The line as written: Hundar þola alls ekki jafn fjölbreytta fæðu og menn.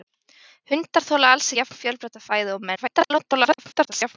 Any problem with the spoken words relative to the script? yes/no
yes